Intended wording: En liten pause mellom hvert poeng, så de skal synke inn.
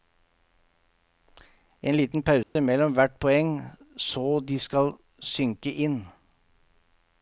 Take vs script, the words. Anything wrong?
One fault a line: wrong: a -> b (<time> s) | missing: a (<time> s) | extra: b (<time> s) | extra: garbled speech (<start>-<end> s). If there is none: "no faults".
no faults